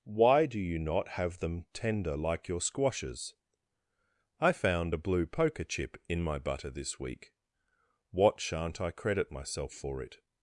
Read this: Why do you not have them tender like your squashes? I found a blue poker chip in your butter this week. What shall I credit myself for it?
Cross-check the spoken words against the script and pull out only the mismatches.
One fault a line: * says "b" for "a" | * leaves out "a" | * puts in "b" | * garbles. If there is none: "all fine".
* says "my" for "your"
* says "shan't" for "shall"